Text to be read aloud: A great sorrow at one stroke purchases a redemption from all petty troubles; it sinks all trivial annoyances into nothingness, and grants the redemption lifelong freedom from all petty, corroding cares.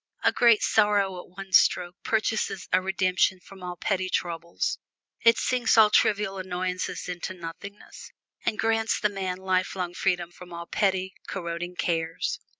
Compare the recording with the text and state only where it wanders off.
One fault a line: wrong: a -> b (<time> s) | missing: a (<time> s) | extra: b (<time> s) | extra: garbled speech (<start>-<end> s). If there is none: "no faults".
wrong: redemption -> man (9.1 s)